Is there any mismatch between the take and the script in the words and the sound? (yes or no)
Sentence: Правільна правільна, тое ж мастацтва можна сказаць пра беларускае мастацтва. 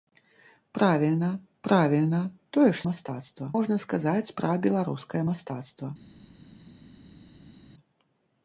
no